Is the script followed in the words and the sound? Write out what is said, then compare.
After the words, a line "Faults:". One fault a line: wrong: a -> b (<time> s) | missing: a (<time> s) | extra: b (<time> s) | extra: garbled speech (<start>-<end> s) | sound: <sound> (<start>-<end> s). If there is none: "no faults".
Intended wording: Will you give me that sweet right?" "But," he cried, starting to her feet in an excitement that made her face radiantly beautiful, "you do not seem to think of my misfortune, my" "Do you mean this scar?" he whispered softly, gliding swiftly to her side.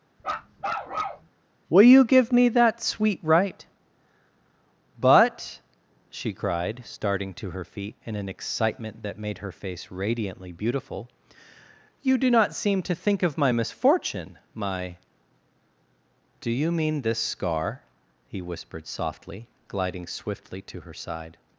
Will you give me that sweet right?" "But," she cried, starting to her feet in an excitement that made her face radiantly beautiful, "you do not seem to think of my misfortune, my" "Do you mean this scar?" he whispered softly, gliding swiftly to her side.
Faults:
sound: bark (0.2-1.3 s)
wrong: he -> she (6.1 s)